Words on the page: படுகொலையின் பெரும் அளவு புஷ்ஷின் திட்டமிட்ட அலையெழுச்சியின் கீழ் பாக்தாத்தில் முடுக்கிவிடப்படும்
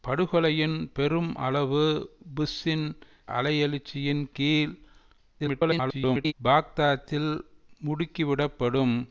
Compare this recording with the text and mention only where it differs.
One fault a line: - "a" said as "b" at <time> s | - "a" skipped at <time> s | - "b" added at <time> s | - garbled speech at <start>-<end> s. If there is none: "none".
- "திட்டமிட்ட" skipped at 2.9 s
- garbled speech at 5.4-6.3 s